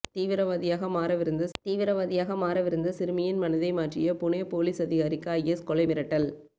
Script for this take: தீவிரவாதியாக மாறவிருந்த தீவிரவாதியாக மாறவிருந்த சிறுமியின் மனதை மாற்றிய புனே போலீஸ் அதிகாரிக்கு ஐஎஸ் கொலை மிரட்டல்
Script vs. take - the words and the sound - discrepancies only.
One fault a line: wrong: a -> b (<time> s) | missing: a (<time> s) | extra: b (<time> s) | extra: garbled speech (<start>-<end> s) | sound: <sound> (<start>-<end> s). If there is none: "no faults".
no faults